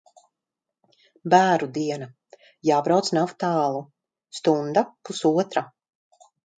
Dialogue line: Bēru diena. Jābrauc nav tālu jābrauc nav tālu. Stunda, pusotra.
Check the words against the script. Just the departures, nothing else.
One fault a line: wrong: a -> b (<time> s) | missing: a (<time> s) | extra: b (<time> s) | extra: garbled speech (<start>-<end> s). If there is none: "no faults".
missing: jābrauc nav tālu (3.9 s)